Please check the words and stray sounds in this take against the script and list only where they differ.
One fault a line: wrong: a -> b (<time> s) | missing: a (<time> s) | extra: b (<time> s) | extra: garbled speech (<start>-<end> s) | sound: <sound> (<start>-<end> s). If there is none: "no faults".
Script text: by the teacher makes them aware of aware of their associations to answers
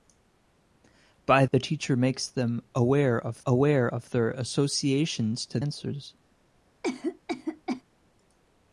sound: cough (6.8-7.8 s)